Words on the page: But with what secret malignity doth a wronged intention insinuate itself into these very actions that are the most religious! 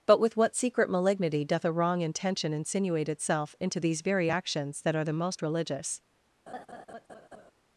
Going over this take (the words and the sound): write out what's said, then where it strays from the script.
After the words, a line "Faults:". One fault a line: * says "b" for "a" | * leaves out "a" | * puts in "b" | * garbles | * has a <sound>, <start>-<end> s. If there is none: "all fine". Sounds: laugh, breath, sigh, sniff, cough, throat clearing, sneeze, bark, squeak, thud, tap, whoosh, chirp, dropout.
But with what secret malignity doth a wrong intention insinuate itself into these very actions that are the most religious!
Faults:
* says "wrong" for "wronged"
* has a laugh, 6.5-7.5 s